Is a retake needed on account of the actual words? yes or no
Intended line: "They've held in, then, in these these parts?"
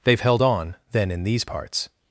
yes